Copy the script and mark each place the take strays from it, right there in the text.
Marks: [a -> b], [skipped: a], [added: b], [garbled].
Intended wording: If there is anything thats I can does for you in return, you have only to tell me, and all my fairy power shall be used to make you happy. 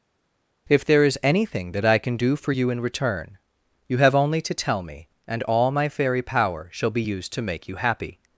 If there is anything [thats -> that] I can [does -> do] for you in return, you have only to tell me, and all my fairy power shall be used to make you happy.